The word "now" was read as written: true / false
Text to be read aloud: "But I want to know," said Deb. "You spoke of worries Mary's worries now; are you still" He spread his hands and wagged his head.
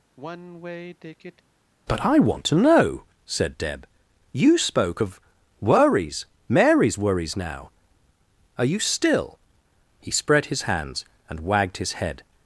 true